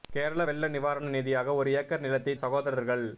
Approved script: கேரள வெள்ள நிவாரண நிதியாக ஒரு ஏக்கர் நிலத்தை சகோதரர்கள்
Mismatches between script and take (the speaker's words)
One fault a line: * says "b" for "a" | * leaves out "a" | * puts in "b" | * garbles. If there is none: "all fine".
all fine